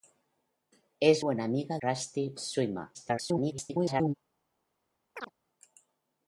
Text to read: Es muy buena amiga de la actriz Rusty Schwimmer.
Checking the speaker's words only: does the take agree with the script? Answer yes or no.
no